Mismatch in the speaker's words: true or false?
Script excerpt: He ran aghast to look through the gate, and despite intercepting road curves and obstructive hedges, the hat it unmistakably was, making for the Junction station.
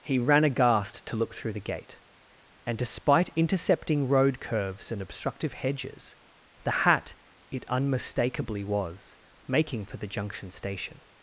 false